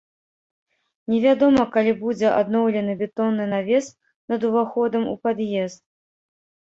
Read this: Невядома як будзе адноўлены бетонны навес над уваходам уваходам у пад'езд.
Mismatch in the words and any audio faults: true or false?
true